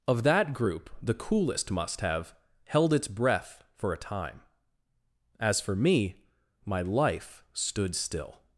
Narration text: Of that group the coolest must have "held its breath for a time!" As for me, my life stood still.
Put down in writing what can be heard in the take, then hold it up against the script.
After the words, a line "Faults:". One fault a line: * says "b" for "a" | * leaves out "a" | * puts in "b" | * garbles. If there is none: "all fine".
Of that group the coolest must have "held its breath for a time!" As for me, my life stood still.
Faults:
all fine